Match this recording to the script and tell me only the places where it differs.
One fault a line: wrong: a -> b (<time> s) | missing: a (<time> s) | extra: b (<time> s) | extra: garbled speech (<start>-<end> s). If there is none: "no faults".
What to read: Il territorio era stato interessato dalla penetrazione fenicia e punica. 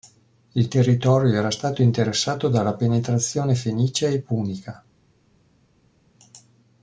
no faults